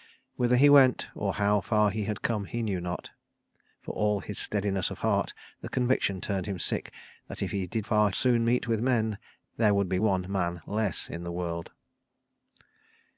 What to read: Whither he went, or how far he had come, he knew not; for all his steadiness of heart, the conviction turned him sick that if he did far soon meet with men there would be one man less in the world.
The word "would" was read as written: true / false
true